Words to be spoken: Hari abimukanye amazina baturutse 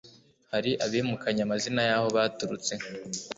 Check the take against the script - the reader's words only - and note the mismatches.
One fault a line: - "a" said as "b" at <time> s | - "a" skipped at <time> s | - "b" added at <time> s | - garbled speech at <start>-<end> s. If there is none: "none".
- "y'aho" added at 1.9 s